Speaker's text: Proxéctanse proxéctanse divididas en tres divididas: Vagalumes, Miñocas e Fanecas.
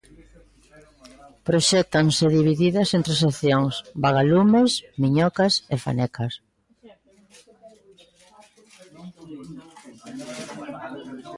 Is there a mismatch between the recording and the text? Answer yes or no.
yes